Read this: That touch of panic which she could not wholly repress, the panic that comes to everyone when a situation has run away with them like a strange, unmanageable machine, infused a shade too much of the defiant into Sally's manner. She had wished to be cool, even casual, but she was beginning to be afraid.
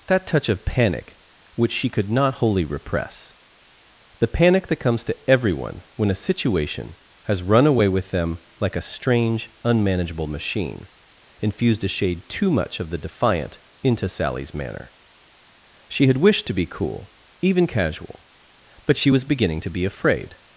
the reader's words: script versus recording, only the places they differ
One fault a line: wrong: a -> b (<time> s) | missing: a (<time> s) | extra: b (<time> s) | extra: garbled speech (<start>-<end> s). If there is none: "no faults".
no faults